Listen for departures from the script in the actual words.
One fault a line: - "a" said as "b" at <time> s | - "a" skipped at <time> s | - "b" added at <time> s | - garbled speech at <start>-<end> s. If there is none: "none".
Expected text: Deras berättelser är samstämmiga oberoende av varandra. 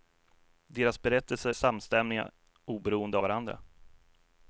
- "är" skipped at 1.5 s
- "av" skipped at 3.2 s